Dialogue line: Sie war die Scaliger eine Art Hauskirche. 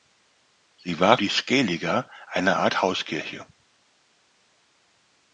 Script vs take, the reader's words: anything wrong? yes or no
no